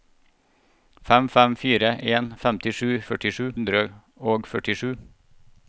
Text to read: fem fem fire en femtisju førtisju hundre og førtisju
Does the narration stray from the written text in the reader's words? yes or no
no